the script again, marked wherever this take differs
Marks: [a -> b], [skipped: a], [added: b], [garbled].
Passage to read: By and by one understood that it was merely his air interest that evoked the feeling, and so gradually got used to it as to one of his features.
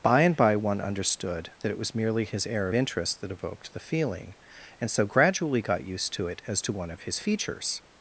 By and by one understood that it was merely his air interest that evoked the feeling, and so gradually got used to it as to one of his features.